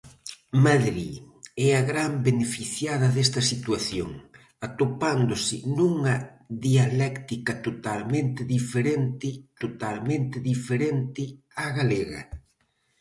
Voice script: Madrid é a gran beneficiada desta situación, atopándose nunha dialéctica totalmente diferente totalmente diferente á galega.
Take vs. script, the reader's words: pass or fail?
pass